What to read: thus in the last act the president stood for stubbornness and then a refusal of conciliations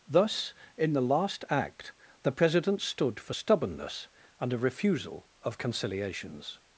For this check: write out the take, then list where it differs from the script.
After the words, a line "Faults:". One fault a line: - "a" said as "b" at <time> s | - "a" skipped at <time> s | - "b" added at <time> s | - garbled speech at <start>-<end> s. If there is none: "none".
thus in the last act the president stood for stubbornness and a refusal of conciliations
Faults:
- "then" skipped at 4.5 s